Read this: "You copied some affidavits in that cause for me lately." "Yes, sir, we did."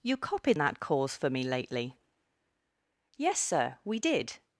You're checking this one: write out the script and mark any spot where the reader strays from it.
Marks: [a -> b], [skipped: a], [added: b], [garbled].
"You copied [skipped: some affidavits in] that cause for me lately." "Yes, sir, we did."